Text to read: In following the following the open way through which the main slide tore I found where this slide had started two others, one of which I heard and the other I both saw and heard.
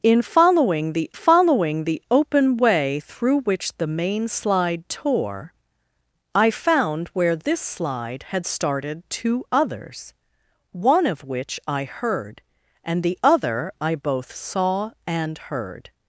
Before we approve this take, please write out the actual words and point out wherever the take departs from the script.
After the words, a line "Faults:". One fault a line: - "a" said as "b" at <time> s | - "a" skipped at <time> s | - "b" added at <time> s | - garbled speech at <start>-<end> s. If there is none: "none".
In following the following the open way through which the main slide tore I found where this slide had started two others, one of which I heard and the other I both saw and heard.
Faults:
none